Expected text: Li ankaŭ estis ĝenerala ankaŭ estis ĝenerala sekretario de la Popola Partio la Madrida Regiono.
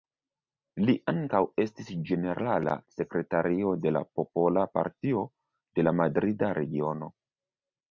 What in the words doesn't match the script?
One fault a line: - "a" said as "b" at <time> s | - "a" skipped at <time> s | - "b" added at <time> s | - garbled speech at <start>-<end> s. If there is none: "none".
- "ankaŭ estis ĝenerala" skipped at 2.7 s
- "de" added at 5.8 s